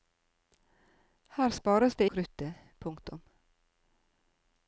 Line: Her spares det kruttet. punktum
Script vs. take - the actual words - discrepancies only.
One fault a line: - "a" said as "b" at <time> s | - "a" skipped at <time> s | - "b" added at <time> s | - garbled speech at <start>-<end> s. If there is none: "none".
none